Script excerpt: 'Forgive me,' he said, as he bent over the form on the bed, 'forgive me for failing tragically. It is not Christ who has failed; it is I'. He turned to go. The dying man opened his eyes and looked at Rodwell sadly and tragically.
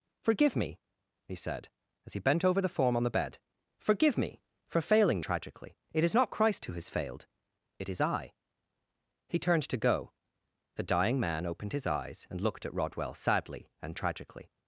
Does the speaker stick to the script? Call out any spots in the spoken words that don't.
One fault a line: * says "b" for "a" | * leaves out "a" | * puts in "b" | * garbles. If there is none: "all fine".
all fine